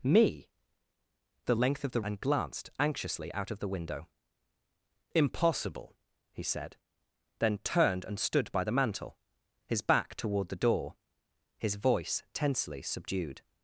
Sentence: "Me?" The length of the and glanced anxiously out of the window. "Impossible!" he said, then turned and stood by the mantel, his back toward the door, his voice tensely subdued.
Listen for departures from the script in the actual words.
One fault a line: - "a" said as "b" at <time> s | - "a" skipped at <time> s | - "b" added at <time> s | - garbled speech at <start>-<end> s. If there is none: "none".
none